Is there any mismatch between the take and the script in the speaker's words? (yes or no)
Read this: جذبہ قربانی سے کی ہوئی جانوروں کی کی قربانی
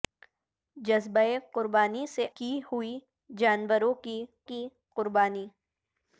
no